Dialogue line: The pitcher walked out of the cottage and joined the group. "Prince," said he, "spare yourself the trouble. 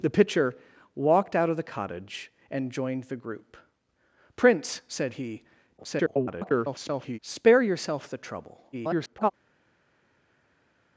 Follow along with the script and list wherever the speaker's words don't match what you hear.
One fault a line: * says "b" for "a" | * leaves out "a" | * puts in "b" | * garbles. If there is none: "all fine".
* garbles
* garbles